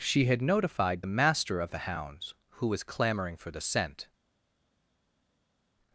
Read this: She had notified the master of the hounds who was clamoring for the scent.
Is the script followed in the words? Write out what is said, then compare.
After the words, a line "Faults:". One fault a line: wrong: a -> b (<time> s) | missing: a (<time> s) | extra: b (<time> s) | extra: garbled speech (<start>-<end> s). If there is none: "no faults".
She had notified the master of the hounds who was clamoring for the scent.
Faults:
no faults